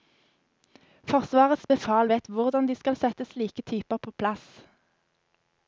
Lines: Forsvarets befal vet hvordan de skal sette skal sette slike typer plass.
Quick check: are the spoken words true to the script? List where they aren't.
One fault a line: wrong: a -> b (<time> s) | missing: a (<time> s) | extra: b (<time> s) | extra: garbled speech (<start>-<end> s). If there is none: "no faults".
missing: skal sette (3.2 s)
extra: på (4.0 s)